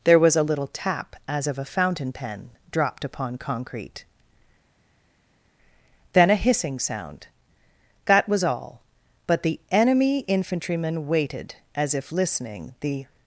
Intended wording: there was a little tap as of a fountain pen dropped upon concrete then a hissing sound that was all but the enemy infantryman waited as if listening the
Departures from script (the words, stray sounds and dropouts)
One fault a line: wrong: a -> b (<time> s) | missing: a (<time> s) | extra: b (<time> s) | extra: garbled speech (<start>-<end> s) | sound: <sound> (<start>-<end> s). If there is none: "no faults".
no faults